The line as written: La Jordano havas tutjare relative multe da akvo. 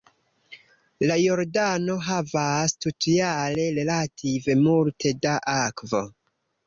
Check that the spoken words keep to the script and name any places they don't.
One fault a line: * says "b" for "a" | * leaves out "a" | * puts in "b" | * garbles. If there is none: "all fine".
all fine